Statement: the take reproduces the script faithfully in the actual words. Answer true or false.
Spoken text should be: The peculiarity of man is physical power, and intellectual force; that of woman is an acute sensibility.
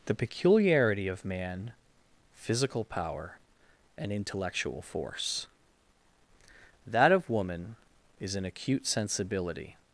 false